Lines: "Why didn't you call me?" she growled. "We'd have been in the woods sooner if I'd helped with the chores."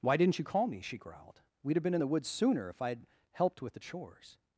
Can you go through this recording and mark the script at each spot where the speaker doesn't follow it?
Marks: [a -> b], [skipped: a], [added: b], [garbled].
"Why didn't you call me?" she growled. "We'd have been in the woods sooner if I'd helped with the chores."